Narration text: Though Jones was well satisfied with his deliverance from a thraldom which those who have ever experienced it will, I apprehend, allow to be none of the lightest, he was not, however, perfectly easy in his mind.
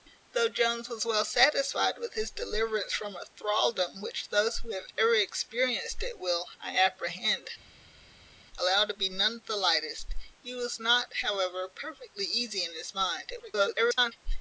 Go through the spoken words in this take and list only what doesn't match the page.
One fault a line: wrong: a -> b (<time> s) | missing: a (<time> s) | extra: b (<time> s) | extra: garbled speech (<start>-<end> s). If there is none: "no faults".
extra: garbled speech (13.3-14.1 s)